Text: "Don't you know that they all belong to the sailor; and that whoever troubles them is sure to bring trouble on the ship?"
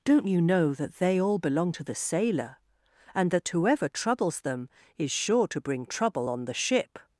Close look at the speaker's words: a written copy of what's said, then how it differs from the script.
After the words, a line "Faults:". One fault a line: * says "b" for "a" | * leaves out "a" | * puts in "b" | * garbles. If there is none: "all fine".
"Don't you know that they all belong to the sailor; and that whoever troubles them is sure to bring trouble on the ship?"
Faults:
all fine